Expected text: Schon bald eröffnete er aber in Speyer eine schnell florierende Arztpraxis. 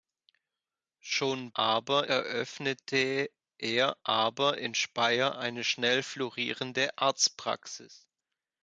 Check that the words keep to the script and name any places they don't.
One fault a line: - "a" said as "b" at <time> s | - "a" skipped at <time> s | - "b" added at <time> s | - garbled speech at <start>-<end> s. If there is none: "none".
- "bald" said as "aber" at 1.5 s